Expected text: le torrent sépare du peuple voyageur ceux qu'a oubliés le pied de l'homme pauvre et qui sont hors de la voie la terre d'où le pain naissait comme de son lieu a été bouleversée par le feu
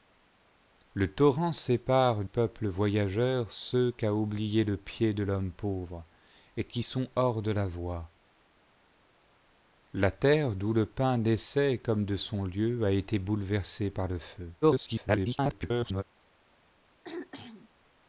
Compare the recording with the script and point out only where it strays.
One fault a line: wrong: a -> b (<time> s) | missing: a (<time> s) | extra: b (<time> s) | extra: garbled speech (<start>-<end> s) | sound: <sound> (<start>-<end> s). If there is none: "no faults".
missing: du (2.2 s)
extra: garbled speech (14.6-16.0 s)
sound: throat clearing (17.0-17.7 s)